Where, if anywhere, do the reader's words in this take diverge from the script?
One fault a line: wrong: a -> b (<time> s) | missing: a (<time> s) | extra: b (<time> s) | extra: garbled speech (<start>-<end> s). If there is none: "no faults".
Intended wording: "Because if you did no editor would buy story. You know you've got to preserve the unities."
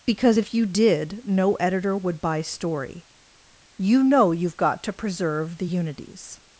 no faults